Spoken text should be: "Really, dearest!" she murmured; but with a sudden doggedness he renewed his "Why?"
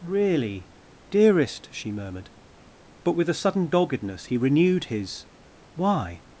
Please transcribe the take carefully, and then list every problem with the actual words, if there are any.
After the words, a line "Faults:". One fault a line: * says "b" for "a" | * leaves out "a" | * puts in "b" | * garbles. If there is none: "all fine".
"Really, dearest!" she murmured; but with a sudden doggedness he renewed his "Why?"
Faults:
all fine